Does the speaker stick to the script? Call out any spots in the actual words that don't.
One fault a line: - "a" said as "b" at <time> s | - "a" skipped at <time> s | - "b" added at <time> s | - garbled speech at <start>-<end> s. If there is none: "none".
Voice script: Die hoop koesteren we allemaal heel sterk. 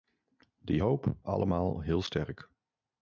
- "koesteren we" skipped at 1.2 s